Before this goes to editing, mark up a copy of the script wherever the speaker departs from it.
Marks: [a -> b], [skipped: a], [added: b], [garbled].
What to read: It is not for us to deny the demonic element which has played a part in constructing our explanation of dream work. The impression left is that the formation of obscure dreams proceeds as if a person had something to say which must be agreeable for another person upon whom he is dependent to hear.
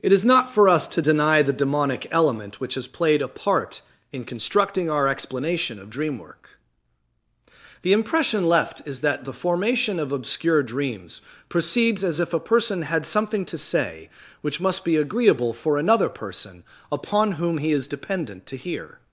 It is not for us to deny the demonic element which has played a part in constructing our explanation of dream work. The impression left is that the formation of obscure dreams proceeds as if a person had something to say which must be agreeable for another person upon whom he is dependent to hear.